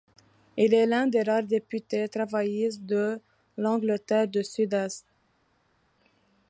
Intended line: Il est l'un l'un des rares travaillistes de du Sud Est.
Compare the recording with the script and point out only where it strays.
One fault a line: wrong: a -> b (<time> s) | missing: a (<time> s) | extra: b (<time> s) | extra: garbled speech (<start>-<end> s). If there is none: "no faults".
missing: l'un (1.1 s)
extra: députés (1.4 s)
extra: l'Angleterre (3.5 s)